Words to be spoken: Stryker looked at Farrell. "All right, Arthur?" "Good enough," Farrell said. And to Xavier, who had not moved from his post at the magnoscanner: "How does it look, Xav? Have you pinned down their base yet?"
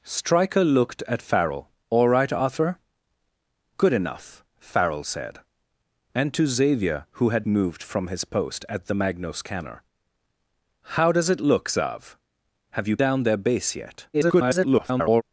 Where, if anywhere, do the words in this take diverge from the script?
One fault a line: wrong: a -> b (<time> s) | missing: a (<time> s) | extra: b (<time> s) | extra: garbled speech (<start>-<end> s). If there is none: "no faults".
missing: not (7.5 s)
missing: pinned (13.0 s)
extra: garbled speech (14.1-15.2 s)